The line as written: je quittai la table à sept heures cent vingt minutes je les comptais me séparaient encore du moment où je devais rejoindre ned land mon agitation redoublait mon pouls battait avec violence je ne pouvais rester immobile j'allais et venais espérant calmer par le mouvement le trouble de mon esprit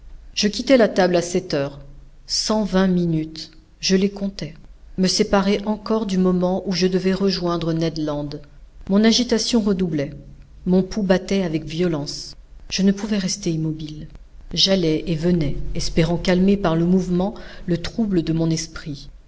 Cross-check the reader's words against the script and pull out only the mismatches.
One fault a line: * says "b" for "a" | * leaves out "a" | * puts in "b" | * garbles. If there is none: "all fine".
all fine